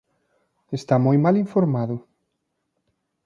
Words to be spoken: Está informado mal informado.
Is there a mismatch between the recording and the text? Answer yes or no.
yes